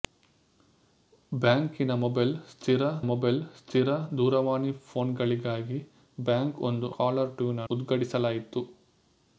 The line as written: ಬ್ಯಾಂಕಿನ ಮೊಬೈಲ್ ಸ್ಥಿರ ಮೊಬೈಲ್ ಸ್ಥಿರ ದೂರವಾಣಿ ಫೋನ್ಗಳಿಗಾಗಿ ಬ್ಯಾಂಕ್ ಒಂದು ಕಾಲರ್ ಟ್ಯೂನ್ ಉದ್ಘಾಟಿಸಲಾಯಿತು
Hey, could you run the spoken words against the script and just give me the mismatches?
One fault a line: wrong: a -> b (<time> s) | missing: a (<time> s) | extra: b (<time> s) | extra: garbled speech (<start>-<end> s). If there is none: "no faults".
no faults